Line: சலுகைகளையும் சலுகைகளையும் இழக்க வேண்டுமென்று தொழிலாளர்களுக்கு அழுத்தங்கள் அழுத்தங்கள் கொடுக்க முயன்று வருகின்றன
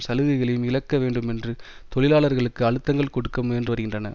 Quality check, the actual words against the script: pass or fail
fail